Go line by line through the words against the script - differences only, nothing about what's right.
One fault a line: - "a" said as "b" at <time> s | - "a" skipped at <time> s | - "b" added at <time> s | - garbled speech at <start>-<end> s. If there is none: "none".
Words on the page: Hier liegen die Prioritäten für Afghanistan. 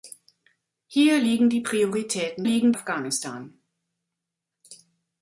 - "für" said as "liegen" at 2.4 s